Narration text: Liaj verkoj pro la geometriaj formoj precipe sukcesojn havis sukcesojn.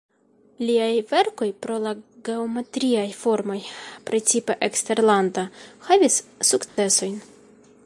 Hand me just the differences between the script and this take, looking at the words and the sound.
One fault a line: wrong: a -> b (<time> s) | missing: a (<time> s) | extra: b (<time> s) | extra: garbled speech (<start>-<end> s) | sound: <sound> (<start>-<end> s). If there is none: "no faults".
wrong: sukcesojn -> eksterlanda (4.7 s)
sound: dropout (6.7-6.8 s)